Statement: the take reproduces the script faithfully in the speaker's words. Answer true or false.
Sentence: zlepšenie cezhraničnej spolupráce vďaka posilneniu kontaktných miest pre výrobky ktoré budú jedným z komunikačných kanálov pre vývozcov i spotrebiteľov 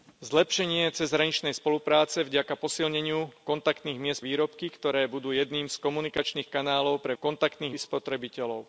false